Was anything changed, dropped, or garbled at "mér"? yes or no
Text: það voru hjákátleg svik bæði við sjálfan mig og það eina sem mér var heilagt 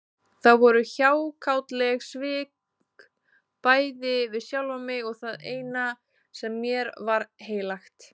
no